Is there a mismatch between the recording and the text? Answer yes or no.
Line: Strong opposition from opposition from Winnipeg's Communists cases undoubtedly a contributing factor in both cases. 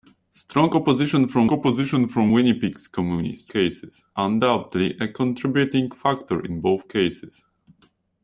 no